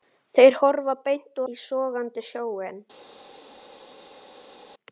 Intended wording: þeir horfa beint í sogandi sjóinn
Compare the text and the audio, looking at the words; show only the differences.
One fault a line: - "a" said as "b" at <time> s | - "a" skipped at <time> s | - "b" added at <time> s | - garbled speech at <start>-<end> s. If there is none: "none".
none